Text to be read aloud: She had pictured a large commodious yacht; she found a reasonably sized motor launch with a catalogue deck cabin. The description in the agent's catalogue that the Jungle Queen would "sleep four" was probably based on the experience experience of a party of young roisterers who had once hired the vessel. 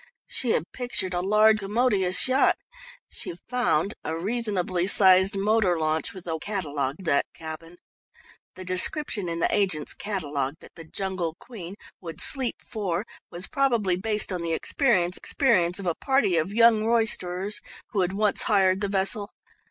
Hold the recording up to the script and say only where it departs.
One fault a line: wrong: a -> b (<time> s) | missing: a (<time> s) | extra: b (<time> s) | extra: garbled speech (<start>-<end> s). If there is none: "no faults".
no faults